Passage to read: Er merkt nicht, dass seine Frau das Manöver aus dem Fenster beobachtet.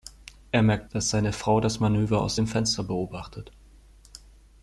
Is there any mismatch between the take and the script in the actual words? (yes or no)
yes